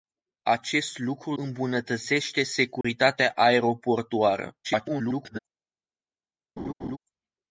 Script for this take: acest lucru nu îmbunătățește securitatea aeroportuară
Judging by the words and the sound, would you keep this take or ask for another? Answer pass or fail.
fail